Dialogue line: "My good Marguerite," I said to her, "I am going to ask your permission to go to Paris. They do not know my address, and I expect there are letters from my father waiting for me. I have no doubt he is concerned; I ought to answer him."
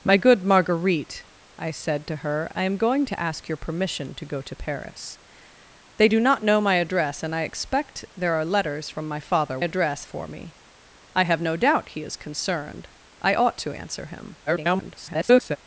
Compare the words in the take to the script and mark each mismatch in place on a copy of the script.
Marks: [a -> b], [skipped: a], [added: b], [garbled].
"My good Marguerite," I said to her, "I am going to ask your permission to go to Paris. They do not know my address, and I expect there are letters from my father [waiting -> address] for me. I have no doubt he is concerned; I ought to answer him." [garbled]